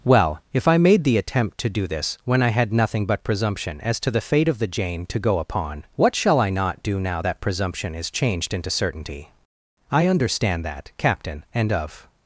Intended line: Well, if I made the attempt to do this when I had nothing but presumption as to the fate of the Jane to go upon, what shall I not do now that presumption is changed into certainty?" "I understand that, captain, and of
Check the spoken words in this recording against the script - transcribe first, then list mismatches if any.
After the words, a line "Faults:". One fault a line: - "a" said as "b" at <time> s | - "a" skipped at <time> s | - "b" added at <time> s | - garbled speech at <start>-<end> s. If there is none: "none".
Well, if I made the attempt to do this when I had nothing but presumption as to the fate of the Jane to go upon, what shall I not do now that presumption is changed into certainty?" "I understand that, captain, and of
Faults:
none